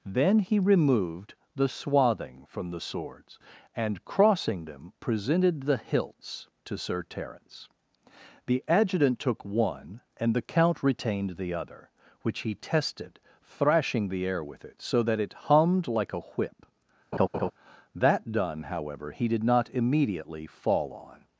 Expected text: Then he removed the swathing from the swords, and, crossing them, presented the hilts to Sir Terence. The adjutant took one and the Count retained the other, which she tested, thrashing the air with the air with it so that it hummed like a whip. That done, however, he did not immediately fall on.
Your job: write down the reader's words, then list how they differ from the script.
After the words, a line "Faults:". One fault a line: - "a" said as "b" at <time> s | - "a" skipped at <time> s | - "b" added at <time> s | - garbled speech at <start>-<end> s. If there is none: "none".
Then he removed the swathing from the swords, and, crossing them, presented the hilts to Sir Terence. The adjutant took one and the Count retained the other, which he tested, thrashing the air with it so that it hummed like a whip. That done, however, he did not immediately fall on.
Faults:
- "she" said as "he" at 12.4 s
- "the air with" skipped at 14.6 s